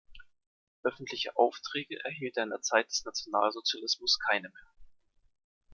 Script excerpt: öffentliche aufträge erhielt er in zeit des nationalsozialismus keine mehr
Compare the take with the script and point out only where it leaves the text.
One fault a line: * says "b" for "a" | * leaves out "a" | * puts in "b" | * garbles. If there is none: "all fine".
* puts in "der"